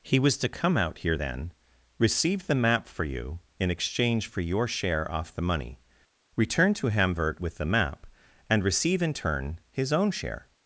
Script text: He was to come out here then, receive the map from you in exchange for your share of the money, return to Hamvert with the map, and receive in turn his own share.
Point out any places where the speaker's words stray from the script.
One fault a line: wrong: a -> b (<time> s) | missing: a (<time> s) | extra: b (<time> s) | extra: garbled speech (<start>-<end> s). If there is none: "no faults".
wrong: from -> for (2.9 s)
wrong: of -> off (5.1 s)